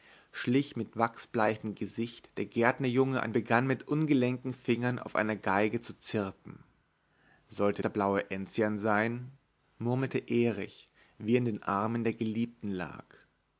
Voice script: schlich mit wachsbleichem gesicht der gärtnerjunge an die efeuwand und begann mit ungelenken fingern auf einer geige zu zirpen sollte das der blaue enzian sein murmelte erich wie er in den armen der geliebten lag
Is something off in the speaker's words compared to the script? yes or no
yes